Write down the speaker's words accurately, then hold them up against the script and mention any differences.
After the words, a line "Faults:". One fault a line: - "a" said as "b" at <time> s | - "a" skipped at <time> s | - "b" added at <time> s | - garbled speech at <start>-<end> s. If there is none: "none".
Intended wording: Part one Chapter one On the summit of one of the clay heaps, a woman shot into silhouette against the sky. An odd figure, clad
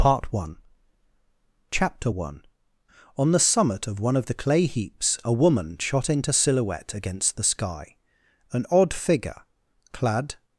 Part one Chapter one On the summit of one of the clay heaps, a woman shot into silhouette against the sky. An odd figure, clad
Faults:
none